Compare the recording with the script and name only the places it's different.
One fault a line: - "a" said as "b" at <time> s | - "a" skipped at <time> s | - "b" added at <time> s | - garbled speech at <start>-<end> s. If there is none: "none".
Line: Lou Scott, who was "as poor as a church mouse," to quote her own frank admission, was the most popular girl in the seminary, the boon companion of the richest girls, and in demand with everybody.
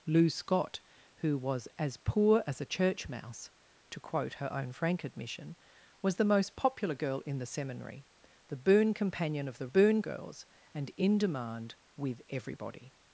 - "richest" said as "boon" at 9.7 s